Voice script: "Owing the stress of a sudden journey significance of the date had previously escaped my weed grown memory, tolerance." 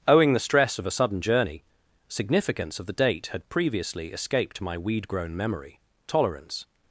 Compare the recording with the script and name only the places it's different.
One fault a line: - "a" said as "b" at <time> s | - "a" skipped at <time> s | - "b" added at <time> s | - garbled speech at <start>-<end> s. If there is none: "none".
none